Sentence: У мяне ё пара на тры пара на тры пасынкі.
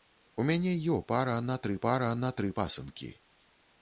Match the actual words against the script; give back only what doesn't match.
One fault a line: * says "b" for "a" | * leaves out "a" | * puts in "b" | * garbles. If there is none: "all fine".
all fine